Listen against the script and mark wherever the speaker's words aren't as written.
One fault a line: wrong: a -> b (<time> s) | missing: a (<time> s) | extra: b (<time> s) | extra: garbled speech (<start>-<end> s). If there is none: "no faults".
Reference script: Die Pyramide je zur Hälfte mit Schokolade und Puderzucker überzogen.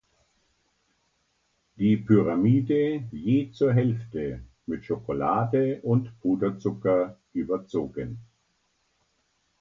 no faults